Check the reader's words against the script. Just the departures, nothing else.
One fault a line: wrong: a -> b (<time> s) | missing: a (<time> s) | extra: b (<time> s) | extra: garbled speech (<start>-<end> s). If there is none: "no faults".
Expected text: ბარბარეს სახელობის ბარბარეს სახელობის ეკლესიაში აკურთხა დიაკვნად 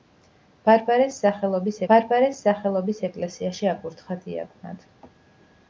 no faults